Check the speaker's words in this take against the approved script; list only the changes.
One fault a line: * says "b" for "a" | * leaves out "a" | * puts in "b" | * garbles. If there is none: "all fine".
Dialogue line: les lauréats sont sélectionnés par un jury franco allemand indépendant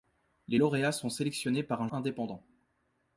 * leaves out "jury franco allemand"